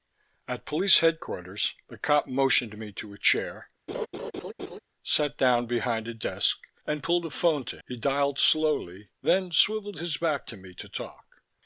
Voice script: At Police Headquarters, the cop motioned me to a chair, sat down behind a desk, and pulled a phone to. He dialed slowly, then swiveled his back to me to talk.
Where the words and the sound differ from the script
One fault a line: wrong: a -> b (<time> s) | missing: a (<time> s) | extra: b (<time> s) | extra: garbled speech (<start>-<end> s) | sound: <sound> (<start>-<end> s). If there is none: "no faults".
sound: laugh (3.9-4.8 s)